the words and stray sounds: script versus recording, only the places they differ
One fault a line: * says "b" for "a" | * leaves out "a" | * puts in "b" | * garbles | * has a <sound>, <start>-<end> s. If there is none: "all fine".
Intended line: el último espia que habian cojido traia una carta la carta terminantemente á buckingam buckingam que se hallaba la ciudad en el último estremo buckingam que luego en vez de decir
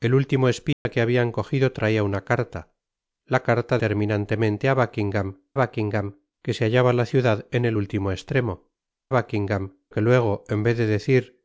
* has a dropout, 0.7-0.9 s